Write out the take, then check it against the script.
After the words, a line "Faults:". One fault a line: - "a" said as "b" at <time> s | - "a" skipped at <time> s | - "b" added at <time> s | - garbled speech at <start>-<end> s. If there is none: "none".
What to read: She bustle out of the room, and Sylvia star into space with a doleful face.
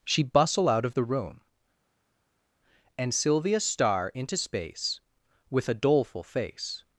She bustle out of the room, and Sylvia star into space with a doleful face.
Faults:
none